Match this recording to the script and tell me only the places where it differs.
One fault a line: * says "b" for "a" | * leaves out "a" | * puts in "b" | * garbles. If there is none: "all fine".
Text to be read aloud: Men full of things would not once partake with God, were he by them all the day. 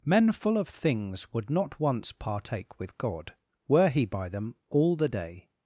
all fine